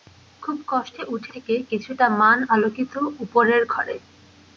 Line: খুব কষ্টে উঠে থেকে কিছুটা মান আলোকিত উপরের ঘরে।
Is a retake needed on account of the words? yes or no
no